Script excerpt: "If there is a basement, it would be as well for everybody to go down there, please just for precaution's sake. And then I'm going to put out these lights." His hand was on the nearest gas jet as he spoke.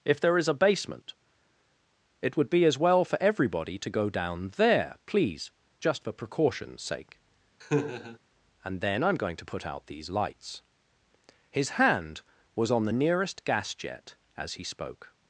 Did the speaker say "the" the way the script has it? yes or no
yes